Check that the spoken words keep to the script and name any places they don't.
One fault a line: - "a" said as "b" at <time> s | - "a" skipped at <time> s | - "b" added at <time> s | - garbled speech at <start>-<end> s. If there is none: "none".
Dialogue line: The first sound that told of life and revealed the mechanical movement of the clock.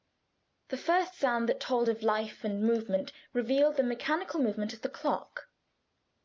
- "movement" added at 2.6 s